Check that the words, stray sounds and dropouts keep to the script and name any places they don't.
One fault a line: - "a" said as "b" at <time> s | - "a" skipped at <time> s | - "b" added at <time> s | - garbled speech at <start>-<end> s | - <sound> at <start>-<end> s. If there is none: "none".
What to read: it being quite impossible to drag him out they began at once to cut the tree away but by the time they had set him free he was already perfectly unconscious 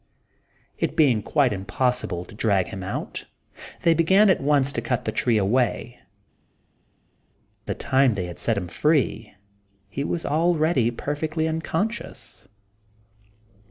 - "but by" skipped at 6.0 s